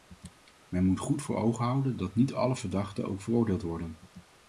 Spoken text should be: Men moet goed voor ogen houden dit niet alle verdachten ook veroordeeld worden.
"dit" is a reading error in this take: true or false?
true